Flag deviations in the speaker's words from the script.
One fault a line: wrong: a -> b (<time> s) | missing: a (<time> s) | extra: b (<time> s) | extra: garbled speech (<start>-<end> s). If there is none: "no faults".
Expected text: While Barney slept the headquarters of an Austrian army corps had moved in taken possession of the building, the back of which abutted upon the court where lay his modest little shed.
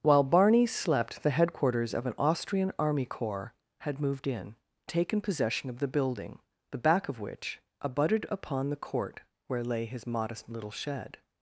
no faults